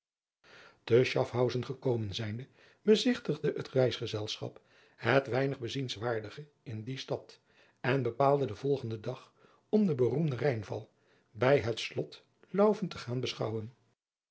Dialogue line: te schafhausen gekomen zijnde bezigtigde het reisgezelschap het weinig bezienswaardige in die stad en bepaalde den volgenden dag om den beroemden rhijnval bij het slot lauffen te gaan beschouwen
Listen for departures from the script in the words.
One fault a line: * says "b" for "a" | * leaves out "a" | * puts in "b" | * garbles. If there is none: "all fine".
all fine